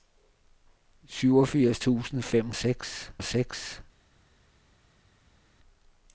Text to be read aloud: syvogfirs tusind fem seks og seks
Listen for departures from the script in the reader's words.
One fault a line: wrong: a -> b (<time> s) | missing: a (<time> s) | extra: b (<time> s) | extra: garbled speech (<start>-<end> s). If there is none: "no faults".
no faults